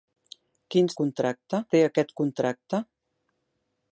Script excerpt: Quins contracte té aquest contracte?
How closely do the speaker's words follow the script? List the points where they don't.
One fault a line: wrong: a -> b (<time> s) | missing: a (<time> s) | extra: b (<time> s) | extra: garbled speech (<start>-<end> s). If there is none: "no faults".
no faults